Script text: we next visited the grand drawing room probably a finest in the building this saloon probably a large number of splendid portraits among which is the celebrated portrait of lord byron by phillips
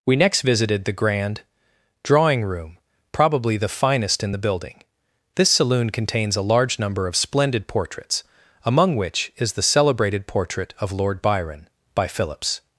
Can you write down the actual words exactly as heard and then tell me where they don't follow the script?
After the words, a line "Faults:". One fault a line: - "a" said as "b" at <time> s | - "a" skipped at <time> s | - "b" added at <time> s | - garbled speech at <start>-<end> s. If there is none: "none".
we next visited the grand drawing room probably the finest in the building this saloon contains a large number of splendid portraits among which is the celebrated portrait of lord byron by phillips
Faults:
- "a" said as "the" at 3.6 s
- "probably" said as "contains" at 5.9 s